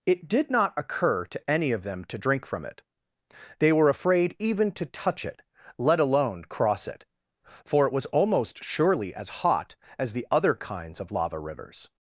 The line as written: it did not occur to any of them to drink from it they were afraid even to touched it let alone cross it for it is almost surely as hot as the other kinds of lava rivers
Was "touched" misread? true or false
true